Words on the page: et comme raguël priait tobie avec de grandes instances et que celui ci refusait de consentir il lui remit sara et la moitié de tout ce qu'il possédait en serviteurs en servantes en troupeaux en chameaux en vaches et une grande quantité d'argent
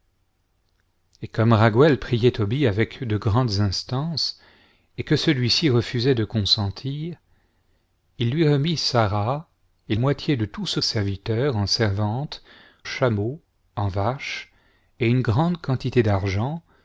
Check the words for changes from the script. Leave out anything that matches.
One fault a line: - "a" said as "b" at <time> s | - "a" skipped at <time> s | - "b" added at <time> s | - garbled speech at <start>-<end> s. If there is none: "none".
- "la" skipped at 9.9 s
- "qu'il possédait en" skipped at 10.8 s
- "en troupeaux en" skipped at 12.4 s